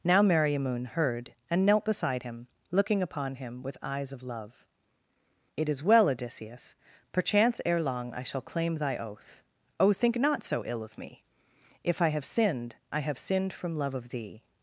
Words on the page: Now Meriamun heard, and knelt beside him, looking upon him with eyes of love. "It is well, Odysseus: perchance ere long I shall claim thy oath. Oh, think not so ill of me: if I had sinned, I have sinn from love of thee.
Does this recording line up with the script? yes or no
no